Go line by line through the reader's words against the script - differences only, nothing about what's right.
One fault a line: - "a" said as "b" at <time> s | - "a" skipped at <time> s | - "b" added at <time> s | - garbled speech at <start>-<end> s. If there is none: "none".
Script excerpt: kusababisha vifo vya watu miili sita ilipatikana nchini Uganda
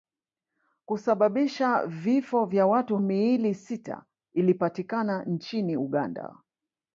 none